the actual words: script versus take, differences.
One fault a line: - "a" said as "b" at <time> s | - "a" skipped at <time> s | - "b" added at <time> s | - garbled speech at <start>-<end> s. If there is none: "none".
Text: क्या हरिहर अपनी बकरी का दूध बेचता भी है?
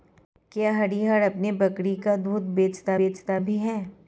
- "बेचता" added at 3.0 s